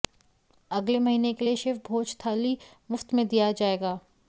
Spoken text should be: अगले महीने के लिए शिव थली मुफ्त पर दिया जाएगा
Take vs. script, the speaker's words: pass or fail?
fail